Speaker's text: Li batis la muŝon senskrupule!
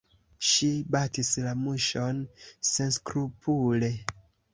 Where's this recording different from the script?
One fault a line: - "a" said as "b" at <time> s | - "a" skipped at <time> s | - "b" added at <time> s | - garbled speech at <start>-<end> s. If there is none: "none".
- "Li" said as "Ŝi" at 0.5 s